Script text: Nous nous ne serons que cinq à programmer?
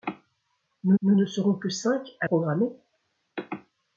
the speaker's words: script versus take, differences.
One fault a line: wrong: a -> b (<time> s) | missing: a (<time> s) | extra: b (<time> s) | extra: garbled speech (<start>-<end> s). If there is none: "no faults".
no faults